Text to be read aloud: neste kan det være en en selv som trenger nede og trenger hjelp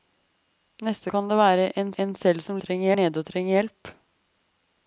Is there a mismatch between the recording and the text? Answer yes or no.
no